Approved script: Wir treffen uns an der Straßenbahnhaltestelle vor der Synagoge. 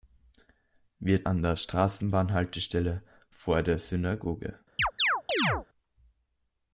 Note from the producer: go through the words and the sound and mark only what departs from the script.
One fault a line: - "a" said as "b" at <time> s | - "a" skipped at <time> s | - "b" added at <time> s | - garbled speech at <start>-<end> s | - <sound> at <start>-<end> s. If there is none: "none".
- "treffen uns" skipped at 1.2 s
- chirp at 4.8-5.7 s